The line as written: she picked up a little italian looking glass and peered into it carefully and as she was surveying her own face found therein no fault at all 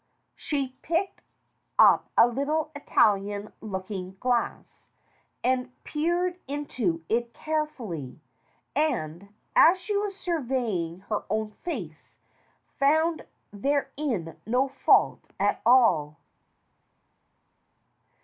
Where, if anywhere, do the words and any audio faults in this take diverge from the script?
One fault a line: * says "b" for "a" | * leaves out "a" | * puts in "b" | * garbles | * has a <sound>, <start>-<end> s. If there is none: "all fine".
all fine